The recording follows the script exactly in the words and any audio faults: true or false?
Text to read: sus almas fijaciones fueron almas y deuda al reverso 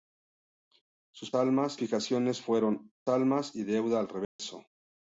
false